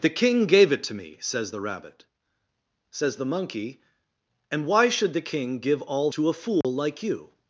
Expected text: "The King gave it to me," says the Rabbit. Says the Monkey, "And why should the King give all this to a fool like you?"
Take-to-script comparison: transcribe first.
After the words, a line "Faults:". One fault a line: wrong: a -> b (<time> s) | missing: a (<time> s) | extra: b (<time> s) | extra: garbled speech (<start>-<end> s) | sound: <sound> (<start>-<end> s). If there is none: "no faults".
"The King gave it to me," says the Rabbit. Says the Monkey, "And why should the King give all to a fool like you?"
Faults:
missing: this (6.1 s)
sound: dropout (6.6-6.6 s)